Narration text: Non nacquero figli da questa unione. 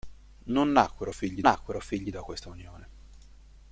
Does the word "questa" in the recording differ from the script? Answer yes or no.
no